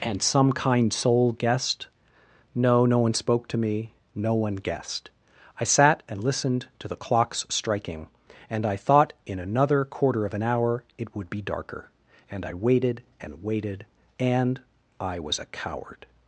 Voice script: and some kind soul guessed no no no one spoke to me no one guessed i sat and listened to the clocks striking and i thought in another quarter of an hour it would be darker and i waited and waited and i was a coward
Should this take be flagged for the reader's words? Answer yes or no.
yes